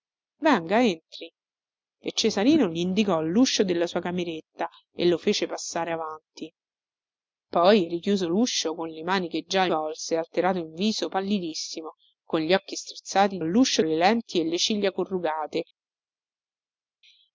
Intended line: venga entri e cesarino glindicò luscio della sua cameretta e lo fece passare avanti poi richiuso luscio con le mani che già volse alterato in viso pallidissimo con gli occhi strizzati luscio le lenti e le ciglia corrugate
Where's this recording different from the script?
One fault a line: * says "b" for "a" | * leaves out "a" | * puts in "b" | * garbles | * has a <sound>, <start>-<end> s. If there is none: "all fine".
all fine